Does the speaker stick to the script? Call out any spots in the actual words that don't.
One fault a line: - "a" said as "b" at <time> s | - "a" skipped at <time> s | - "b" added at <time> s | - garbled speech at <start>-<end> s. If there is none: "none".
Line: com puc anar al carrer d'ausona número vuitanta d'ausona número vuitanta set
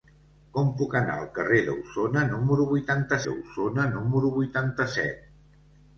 none